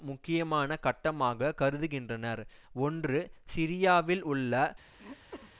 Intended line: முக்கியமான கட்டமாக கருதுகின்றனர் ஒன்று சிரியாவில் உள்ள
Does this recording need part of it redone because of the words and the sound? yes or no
yes